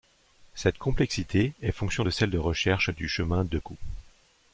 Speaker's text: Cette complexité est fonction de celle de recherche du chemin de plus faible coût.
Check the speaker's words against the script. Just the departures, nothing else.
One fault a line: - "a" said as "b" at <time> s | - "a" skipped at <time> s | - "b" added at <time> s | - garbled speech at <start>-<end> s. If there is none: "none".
- "plus faible" skipped at 3.6 s